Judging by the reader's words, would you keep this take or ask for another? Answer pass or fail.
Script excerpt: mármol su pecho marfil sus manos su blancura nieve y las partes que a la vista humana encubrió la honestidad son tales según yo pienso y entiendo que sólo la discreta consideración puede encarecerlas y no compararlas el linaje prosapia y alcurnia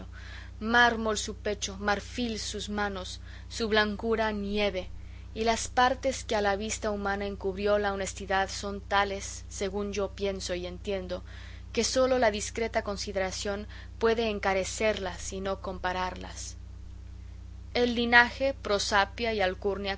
pass